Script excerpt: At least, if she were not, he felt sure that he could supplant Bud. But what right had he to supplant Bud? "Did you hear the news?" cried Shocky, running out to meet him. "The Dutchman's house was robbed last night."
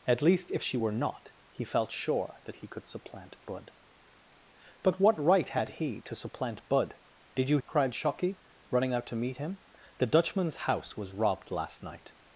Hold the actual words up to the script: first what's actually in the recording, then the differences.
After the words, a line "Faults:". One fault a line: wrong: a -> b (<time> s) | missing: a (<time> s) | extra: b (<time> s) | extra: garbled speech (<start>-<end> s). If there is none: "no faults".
At least, if she were not, he felt sure that he could supplant Bud. But what right had he to supplant Bud? "Did you?" cried Shocky, running out to meet him. "The Dutchman's house was robbed last night."
Faults:
missing: hear the news (7.6 s)